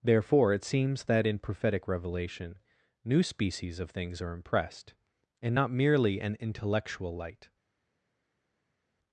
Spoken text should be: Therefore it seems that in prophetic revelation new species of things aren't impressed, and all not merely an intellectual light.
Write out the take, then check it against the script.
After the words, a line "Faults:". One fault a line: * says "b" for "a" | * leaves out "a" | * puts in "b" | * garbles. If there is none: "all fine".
Therefore it seems that in prophetic revelation new species of things are impressed, and not merely an intellectual light.
Faults:
* says "are" for "aren't"
* leaves out "all"